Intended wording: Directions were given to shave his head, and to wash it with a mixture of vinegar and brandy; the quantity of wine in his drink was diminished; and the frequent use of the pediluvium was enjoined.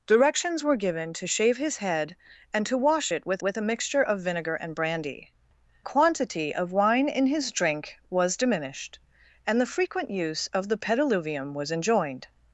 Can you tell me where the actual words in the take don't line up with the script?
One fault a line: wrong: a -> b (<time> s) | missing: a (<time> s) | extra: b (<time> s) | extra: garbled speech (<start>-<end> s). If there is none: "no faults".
extra: with (3.4 s)
missing: the (5.3 s)